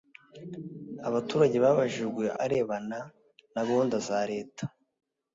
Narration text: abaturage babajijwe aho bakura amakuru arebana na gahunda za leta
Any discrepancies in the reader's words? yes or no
yes